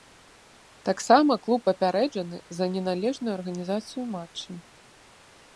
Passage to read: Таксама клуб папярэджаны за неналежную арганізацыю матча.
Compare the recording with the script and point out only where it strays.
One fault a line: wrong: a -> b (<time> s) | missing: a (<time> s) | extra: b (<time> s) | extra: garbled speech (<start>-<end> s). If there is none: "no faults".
no faults